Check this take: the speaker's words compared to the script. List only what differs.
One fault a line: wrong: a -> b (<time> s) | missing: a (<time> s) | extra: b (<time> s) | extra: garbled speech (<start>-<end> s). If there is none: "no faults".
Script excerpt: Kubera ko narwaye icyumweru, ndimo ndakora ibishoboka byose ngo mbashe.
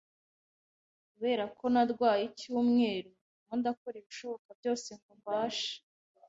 no faults